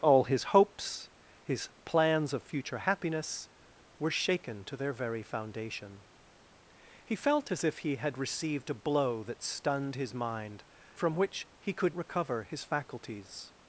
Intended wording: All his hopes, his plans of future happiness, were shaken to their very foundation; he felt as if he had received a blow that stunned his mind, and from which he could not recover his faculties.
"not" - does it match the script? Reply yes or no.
no